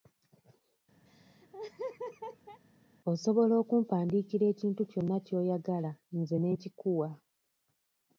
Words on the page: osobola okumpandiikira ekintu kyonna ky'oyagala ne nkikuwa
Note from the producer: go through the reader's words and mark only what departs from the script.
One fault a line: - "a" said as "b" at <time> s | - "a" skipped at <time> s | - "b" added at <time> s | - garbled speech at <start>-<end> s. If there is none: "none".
- "nze" added at 6.2 s